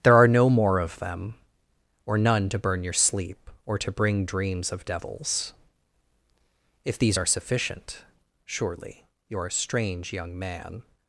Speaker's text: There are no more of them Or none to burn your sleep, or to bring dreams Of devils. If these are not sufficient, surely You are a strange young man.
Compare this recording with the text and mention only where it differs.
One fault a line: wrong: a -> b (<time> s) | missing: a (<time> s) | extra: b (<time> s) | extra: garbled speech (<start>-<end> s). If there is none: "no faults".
missing: not (7.2 s)